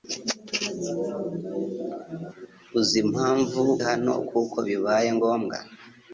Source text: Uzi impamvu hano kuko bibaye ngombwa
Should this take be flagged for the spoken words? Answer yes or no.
no